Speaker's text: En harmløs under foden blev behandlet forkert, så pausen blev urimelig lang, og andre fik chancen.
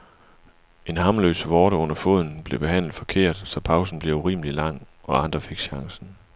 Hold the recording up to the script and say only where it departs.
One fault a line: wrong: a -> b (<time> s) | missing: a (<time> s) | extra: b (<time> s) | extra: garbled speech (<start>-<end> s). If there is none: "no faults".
extra: vorte (1.5 s)